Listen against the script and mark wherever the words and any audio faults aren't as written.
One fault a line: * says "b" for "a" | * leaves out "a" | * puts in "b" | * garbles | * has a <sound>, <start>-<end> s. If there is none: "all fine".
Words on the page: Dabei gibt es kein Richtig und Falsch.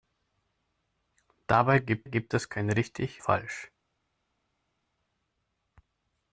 * puts in "gibt"
* leaves out "und"